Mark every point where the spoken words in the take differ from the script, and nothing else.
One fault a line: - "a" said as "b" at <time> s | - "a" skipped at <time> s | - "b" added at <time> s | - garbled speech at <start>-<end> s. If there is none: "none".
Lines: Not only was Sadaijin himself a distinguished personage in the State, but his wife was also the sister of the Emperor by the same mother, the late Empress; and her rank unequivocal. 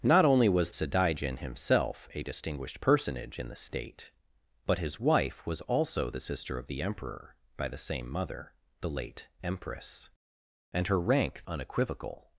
none